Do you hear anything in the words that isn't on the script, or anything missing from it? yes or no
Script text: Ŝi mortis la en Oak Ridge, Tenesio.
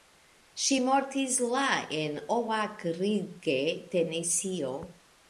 no